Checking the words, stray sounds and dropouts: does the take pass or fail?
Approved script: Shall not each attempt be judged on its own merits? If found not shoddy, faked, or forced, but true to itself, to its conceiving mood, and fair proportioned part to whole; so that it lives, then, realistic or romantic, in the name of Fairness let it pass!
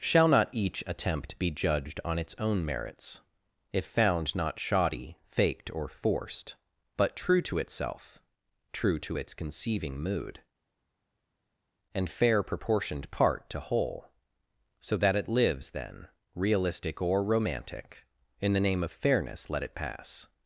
fail